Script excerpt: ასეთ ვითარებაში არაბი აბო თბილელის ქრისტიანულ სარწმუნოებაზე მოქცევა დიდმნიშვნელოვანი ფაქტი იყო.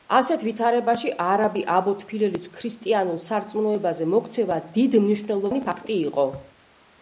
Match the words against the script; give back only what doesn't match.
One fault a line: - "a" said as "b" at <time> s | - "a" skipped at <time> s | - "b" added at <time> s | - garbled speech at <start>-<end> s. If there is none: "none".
none